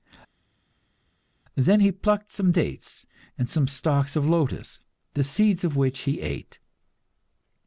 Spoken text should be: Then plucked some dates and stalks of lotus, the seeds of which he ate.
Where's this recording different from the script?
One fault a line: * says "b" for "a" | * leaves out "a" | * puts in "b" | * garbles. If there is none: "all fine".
* puts in "he"
* puts in "some"